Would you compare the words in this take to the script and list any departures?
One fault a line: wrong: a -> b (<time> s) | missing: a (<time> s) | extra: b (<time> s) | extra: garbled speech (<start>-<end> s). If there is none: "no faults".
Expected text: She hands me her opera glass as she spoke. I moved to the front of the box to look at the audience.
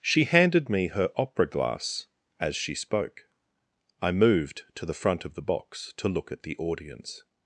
wrong: hands -> handed (0.2 s)